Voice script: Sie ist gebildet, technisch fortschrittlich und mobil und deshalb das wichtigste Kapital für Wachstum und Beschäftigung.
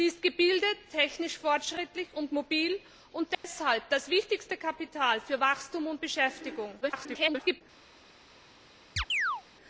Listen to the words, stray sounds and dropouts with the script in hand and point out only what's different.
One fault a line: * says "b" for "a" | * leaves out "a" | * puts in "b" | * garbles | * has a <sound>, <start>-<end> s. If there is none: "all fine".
* has a dropout, 3.3-3.4 s
* garbles
* has a chirp, 9.0-9.4 s